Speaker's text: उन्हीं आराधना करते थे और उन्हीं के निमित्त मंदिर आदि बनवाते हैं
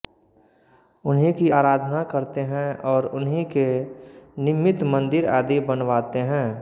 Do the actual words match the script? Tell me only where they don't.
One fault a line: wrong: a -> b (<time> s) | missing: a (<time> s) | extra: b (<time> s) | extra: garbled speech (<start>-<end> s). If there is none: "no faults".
extra: की (1.4 s)
wrong: थे -> हैं (2.5 s)